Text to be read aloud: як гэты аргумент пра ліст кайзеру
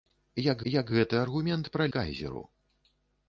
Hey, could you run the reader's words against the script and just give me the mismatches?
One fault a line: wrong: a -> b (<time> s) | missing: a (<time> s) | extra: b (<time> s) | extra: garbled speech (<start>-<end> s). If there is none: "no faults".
extra: як (0.7 s)
missing: ліст (1.8 s)